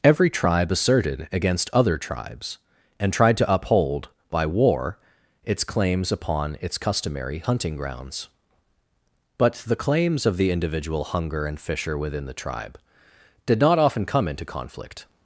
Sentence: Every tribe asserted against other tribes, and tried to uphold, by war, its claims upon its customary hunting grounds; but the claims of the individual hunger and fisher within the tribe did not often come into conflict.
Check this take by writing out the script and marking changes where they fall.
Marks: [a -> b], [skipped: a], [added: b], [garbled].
Every tribe asserted against other tribes, and tried to uphold, by war, its claims upon its customary hunting grounds; but the claims of the individual hunger and fisher within the tribe did not often come into conflict.